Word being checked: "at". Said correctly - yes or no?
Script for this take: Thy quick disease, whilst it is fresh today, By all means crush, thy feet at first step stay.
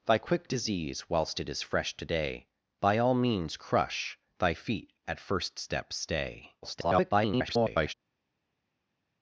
yes